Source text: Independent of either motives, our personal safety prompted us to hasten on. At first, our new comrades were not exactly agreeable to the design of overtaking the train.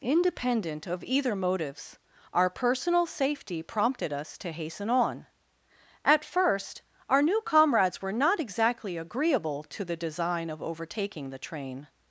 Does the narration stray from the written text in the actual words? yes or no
no